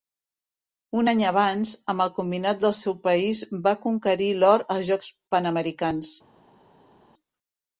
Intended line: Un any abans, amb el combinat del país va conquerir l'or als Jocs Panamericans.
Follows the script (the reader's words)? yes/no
no